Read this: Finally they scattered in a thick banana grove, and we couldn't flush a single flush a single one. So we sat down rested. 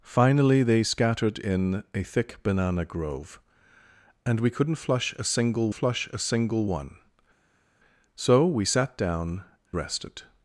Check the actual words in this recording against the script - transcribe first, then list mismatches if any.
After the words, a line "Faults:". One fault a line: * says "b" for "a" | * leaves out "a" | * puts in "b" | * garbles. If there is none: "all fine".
Finally they scattered in a thick banana grove, and we couldn't flush a single flush a single one. So we sat down rested.
Faults:
all fine